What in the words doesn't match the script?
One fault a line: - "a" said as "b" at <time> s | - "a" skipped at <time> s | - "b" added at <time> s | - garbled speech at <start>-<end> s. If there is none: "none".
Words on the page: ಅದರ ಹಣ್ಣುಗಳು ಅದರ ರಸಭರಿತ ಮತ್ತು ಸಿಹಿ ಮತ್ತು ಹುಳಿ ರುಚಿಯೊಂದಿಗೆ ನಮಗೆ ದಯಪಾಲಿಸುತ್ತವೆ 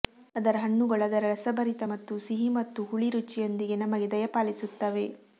none